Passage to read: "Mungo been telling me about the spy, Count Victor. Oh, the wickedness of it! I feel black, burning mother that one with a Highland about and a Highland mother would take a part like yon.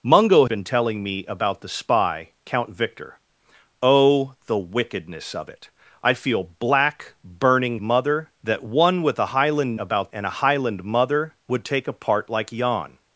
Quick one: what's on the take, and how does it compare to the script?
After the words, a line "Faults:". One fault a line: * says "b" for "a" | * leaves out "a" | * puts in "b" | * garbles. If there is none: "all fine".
"Mungo been telling me about the spy, Count Victor. Oh, the wickedness of it! I feel black, burning mother that one with a Highland about and a Highland mother would take a part like yon.
Faults:
all fine